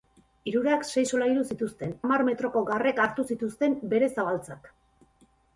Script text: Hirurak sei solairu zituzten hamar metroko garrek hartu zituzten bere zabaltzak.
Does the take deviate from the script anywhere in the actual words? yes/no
no